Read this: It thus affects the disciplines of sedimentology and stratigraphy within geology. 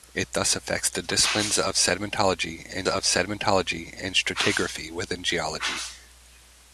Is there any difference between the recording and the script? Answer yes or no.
yes